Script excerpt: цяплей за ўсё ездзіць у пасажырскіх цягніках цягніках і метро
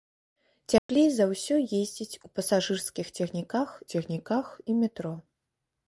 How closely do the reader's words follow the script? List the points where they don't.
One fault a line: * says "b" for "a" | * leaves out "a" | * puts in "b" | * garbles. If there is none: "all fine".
all fine